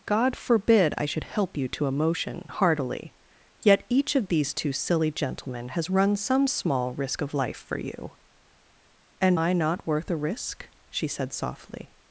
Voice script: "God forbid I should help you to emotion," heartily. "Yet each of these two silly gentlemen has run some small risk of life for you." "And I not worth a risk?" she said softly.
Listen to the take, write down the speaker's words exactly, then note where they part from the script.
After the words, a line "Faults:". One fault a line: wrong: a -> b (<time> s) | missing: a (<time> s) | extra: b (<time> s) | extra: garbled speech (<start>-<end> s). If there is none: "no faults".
"God forbid I should help you to emotion," heartily. "Yet each of these two silly gentlemen has run some small risk of life for you." "And I not worth a risk?" she said softly.
Faults:
no faults